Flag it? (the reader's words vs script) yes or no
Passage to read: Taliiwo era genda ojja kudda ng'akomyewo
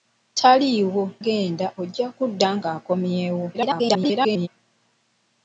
yes